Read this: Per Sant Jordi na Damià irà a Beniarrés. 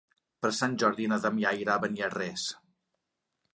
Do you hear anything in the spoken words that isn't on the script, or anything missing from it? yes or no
no